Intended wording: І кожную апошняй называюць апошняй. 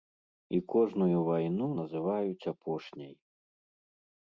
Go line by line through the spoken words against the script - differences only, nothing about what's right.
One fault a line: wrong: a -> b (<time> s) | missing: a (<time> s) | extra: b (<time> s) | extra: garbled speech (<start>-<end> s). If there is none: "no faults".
wrong: апошняй -> вайну (1.3 s)